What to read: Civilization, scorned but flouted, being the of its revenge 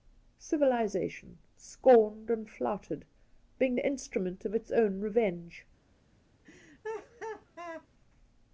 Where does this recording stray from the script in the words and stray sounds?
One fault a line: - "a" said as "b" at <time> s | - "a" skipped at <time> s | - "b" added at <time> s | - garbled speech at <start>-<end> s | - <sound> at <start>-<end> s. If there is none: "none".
- "but" said as "and" at 2.3 s
- "instrument" added at 3.8 s
- "own" added at 4.7 s
- laugh at 6.4-7.9 s